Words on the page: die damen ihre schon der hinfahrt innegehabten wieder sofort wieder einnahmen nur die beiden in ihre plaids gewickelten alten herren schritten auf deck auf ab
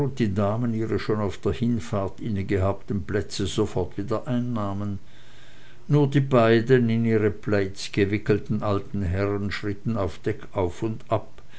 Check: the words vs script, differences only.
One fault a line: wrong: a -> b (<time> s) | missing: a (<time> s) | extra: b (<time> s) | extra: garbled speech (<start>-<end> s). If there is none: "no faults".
extra: auf (1.2 s)
wrong: wieder -> plätze (3.0 s)
extra: und (10.8 s)